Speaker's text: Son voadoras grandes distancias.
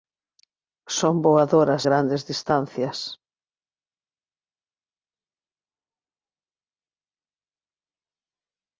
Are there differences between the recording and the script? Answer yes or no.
no